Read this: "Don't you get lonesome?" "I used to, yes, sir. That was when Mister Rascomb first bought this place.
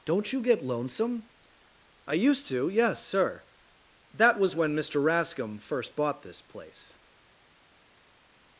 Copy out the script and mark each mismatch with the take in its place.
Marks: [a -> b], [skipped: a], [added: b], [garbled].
"Don't you get lonesome?" "I used to, yes, sir. That was when Mister Rascomb first bought this place.